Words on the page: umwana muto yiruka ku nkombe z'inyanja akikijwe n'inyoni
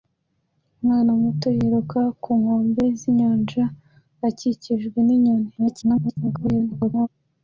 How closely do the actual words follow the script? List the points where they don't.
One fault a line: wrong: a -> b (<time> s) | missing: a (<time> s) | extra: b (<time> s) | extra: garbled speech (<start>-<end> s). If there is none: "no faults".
extra: garbled speech (5.6-7.1 s)